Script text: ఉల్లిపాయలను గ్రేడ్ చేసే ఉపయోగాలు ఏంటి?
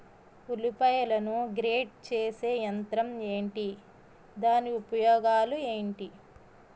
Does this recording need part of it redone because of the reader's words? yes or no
yes